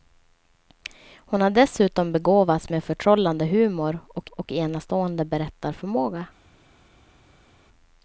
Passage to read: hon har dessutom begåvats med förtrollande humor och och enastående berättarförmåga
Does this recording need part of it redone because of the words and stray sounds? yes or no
no